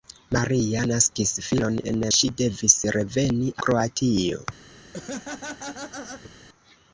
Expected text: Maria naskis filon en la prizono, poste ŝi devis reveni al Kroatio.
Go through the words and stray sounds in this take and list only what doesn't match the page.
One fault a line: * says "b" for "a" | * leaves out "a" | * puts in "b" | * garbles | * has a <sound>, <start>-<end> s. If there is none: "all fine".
* leaves out "la prizono poste"
* leaves out "al"
* has a laugh, 4.9-6.4 s